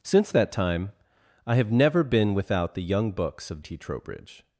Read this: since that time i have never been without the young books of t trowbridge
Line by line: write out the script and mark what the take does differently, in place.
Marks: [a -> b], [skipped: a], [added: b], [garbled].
since that time i have never been without the young books of t trowbridge